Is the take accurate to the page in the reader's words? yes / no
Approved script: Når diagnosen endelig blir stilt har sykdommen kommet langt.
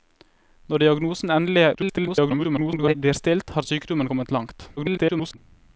no